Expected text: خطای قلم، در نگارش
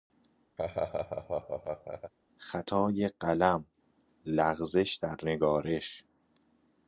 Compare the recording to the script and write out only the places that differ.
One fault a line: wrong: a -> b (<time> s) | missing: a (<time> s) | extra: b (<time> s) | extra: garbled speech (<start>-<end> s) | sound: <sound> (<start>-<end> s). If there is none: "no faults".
sound: laugh (0.6-2.1 s)
extra: لغزش (4.3 s)